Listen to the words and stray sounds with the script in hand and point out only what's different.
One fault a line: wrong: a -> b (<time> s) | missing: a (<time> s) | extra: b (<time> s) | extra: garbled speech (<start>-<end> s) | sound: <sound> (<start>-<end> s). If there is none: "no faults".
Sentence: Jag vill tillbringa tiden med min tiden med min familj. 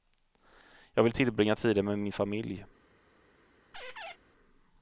missing: tiden med min (2.1 s)
sound: squeak (3.7-4.2 s)